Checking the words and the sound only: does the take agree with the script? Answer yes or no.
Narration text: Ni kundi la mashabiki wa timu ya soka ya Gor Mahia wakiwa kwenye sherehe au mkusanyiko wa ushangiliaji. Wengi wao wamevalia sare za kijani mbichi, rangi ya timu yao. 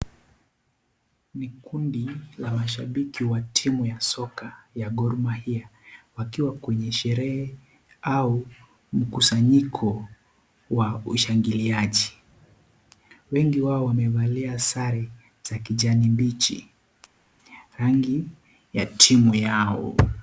yes